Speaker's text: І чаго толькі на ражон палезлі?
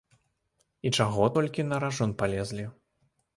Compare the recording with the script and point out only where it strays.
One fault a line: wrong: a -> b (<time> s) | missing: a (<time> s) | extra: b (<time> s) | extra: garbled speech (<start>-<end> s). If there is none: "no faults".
no faults